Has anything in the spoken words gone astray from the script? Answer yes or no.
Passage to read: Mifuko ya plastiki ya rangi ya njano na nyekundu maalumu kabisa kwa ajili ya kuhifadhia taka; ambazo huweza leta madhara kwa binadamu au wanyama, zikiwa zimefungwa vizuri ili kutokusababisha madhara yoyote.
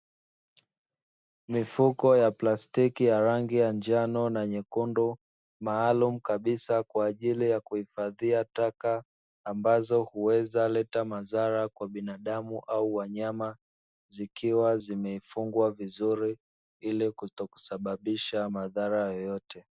no